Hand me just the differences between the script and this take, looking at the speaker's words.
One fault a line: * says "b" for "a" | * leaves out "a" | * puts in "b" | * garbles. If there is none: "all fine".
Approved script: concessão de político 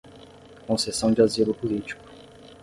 * puts in "asilo"